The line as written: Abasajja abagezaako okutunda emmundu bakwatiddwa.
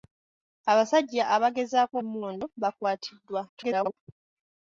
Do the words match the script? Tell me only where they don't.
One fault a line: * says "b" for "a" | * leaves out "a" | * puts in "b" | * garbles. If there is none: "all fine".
* leaves out "okutunda"
* garbles